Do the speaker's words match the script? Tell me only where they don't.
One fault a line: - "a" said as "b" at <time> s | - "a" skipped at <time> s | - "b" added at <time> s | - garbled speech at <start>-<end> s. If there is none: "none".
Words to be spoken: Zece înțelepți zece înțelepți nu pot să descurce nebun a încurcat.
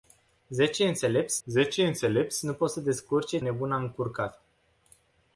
none